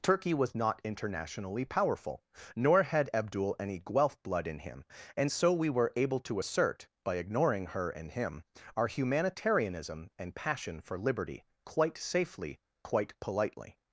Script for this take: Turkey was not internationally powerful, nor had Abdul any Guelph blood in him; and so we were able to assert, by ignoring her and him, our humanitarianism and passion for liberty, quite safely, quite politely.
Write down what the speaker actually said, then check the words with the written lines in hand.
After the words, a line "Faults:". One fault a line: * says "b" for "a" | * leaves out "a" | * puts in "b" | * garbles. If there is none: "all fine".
Turkey was not internationally powerful, nor had Abdul any Guelph blood in him; and so we were able to assert, by ignoring her and him, our humanitarianism and passion for liberty, quite safely, quite politely.
Faults:
all fine